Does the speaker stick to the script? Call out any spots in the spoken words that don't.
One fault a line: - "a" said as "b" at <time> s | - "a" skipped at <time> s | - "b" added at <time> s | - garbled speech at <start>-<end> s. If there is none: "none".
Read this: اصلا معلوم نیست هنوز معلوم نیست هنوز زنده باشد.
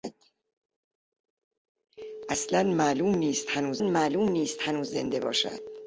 none